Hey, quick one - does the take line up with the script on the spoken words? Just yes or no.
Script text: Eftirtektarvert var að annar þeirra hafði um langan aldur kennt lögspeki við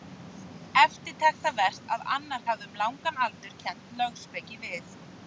no